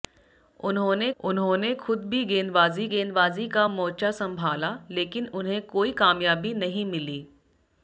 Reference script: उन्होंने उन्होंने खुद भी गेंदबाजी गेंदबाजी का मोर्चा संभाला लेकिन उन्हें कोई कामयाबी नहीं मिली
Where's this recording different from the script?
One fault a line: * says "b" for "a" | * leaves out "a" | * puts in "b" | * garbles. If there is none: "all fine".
all fine